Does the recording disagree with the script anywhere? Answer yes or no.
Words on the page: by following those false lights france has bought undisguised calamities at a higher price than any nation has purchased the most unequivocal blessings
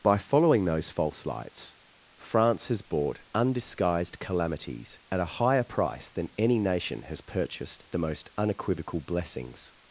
no